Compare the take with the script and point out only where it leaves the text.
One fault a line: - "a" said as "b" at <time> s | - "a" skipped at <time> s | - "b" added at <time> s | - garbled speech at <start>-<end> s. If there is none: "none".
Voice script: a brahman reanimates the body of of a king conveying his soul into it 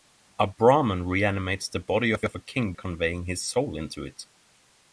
none